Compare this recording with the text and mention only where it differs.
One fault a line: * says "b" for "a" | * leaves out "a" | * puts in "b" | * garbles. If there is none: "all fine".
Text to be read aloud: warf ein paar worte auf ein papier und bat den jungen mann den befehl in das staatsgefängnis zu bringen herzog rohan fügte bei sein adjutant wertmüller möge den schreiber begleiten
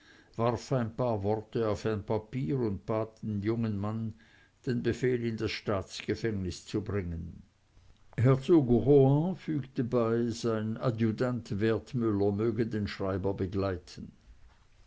all fine